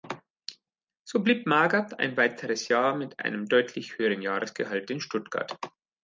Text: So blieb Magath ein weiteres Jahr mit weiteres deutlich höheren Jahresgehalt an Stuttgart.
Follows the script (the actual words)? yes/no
no